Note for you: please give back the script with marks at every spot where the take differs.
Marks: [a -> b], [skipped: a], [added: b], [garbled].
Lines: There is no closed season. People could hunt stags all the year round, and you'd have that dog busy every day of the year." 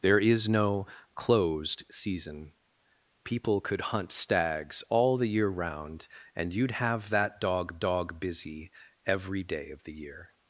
There is no closed season. People could hunt stags all the year round, and you'd have that dog [added: dog] busy every day of the year."